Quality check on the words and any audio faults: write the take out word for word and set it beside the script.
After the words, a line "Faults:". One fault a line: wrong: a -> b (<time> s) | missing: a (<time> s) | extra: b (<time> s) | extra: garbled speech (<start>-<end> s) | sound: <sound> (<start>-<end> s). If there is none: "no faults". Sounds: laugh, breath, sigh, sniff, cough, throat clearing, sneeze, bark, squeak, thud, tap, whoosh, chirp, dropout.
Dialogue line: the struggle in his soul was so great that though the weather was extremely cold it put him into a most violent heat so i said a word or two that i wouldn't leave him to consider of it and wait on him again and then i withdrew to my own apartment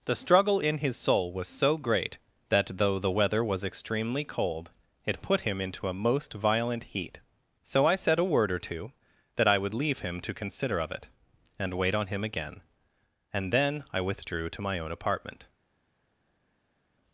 the struggle in his soul was so great that though the weather was extremely cold it put him into a most violent heat so i said a word or two that i would leave him to consider of it and wait on him again and then i withdrew to my own apartment
Faults:
wrong: wouldn't -> would (9.6 s)